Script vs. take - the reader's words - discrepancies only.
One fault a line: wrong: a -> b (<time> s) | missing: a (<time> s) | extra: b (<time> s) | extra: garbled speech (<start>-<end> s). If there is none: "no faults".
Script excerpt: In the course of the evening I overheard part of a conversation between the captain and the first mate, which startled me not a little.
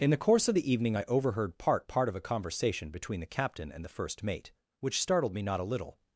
extra: part (1.9 s)